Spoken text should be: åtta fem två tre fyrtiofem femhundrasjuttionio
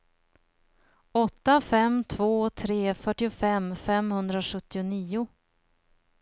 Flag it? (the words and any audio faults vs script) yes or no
no